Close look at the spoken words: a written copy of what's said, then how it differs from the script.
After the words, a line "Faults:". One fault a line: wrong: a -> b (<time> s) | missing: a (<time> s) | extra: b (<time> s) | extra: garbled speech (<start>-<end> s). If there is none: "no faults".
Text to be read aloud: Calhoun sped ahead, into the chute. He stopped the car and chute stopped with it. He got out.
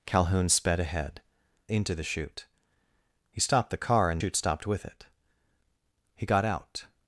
Calhoun sped ahead, into the chute. He stopped the car and chute stopped with it. He got out.
Faults:
no faults